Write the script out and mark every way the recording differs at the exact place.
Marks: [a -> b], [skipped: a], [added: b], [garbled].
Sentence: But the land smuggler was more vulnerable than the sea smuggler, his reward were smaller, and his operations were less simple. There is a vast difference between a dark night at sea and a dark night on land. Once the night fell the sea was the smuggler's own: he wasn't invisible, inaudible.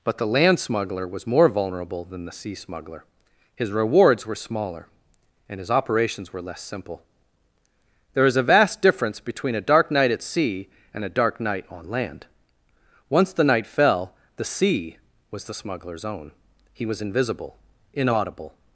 But the land smuggler was more vulnerable than the sea smuggler, his [reward -> rewards] were smaller, and his operations were less simple. There is a vast difference between a dark night at sea and a dark night on land. Once the night fell the sea was the smuggler's own: he [wasn't -> was] invisible, inaudible.